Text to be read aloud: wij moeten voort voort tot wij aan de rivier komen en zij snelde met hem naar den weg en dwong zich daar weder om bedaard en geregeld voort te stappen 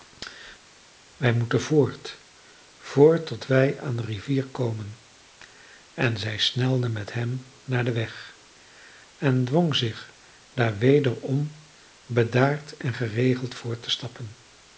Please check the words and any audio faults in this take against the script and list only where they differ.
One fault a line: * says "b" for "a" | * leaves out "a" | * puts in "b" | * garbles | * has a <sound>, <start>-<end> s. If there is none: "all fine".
all fine